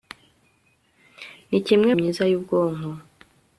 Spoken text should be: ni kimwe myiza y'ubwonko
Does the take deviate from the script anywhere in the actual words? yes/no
no